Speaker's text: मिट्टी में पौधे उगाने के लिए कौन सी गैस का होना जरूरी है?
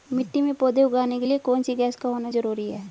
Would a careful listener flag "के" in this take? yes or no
no